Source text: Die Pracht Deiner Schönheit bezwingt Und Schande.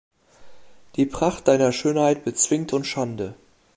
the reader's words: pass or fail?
pass